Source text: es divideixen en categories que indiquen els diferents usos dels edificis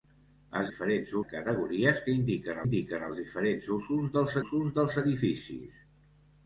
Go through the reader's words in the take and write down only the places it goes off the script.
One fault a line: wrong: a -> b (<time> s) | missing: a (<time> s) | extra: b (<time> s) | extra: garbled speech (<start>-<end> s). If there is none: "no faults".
wrong: divideixen -> diferents (0.7 s)
extra: indiquen (2.6 s)
extra: usos dels (4.4 s)